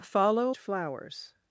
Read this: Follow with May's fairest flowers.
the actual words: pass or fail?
fail